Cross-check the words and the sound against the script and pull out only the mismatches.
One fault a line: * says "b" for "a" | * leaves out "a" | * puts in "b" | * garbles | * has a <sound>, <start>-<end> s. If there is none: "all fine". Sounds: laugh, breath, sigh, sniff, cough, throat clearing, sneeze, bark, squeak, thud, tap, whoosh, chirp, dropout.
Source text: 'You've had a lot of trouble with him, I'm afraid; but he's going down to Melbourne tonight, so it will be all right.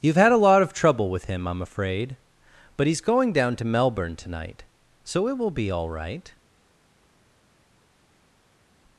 all fine